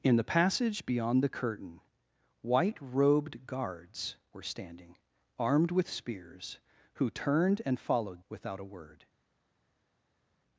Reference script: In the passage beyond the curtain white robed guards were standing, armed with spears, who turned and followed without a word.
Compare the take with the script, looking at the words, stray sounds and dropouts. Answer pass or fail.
pass